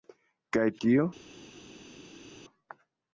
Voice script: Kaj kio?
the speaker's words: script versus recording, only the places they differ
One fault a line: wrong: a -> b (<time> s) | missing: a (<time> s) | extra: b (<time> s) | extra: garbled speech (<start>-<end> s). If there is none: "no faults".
no faults